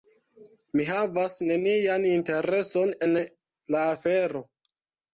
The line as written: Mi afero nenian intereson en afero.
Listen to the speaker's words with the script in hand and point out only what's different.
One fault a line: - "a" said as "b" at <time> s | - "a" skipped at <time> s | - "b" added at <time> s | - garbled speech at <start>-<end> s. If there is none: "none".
- "afero" said as "havas" at 0.9 s
- "la" added at 3.2 s